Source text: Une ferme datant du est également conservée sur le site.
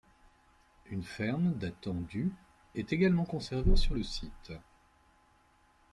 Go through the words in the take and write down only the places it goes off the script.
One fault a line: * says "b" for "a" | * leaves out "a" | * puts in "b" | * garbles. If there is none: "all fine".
all fine